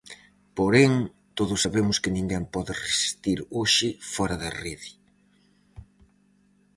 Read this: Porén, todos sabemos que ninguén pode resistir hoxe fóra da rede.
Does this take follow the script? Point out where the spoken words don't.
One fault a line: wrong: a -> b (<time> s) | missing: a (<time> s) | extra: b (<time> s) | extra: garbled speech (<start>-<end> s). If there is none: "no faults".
no faults